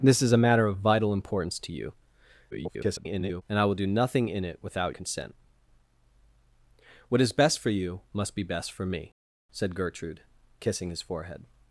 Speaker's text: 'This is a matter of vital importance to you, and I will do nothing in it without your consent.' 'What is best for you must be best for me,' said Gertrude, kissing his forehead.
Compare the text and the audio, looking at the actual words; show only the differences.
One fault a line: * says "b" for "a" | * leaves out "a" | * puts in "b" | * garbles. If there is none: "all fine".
* garbles
* leaves out "your"